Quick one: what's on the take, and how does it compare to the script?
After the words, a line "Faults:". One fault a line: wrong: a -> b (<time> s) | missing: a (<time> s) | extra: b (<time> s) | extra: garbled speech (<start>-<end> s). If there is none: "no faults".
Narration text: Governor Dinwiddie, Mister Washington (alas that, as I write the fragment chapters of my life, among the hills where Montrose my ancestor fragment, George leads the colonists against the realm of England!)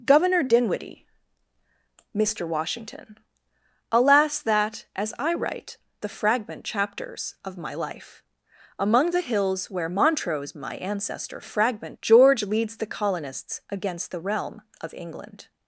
Governor Dinwiddie, Mister Washington (alas that, as I write the fragment chapters of my life, among the hills where Montrose my ancestor fragment, George leads the colonists against the realm of England!)
Faults:
no faults